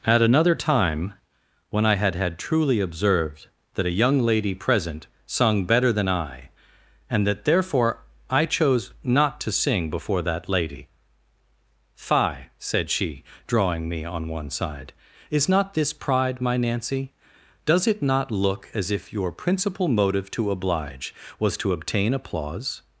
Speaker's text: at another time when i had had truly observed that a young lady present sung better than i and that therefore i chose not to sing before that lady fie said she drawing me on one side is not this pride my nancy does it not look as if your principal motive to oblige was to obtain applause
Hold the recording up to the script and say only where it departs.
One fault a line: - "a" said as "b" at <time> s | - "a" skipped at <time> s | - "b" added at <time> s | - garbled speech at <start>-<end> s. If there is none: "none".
none